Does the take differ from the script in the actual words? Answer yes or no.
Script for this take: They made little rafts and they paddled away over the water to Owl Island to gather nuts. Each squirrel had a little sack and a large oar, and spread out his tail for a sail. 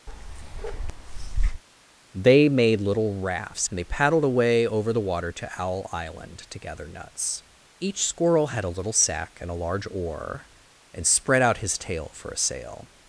no